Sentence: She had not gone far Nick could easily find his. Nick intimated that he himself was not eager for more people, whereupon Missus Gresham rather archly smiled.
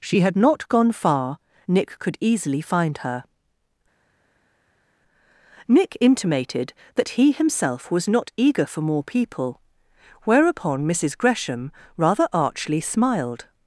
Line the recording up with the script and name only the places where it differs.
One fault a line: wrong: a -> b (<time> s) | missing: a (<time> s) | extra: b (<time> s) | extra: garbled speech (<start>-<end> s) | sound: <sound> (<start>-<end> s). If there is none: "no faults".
wrong: his -> her (3.0 s)